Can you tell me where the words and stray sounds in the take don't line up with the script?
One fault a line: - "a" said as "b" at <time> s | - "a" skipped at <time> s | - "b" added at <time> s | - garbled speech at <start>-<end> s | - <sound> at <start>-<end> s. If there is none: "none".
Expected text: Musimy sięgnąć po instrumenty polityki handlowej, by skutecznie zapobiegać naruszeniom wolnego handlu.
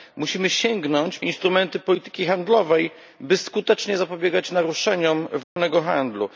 - "po" skipped at 1.2 s
- dropout at 5.4-5.6 s